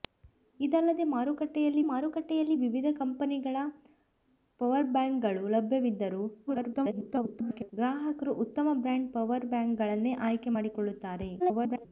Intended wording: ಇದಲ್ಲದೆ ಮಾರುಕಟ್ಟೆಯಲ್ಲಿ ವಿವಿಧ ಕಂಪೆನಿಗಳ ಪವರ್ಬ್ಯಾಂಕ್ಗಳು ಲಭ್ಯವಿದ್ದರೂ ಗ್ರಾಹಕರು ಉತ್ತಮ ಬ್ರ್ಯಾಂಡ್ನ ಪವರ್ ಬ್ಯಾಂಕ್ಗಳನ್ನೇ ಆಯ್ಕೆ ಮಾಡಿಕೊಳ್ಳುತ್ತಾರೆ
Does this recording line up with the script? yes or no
no